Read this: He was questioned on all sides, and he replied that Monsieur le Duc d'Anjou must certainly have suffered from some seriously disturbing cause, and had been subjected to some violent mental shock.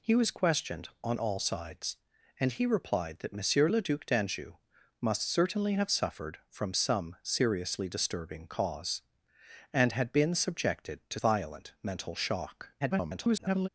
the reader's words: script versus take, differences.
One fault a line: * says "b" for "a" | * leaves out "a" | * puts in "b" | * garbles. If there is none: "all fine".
* leaves out "some"
* garbles